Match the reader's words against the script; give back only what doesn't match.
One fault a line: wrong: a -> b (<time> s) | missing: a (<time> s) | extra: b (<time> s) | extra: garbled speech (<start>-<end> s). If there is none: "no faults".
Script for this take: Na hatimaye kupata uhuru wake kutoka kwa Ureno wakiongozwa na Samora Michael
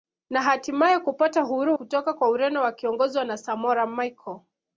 missing: wake (1.8 s)